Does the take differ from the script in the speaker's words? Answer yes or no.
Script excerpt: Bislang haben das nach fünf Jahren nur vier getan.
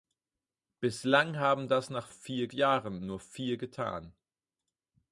yes